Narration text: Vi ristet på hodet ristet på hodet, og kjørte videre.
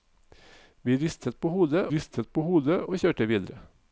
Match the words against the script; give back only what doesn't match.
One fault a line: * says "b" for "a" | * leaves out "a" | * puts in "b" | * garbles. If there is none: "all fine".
all fine